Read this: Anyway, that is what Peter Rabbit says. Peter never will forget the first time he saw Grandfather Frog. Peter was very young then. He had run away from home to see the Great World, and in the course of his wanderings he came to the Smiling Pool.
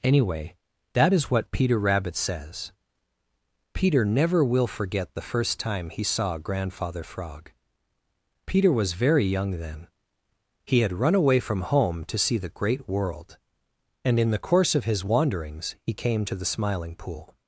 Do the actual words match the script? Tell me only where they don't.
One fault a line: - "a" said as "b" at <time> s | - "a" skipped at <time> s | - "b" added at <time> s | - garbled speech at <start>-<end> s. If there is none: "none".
none